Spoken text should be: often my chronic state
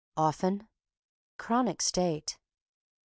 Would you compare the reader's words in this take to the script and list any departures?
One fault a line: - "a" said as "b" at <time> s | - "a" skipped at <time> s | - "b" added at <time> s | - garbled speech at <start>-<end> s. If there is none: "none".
- "my" skipped at 0.7 s